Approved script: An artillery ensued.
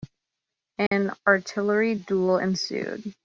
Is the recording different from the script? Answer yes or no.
yes